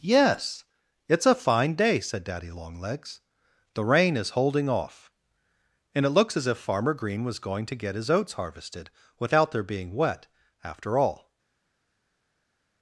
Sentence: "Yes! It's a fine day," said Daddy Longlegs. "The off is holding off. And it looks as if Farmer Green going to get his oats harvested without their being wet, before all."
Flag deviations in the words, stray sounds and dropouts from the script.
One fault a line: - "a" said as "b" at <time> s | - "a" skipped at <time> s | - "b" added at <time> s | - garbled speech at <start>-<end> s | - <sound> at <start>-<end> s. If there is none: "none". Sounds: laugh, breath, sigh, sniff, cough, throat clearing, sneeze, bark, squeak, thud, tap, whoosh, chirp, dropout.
- "off" said as "rain" at 3.8 s
- "was" added at 7.2 s
- "before" said as "after" at 10.6 s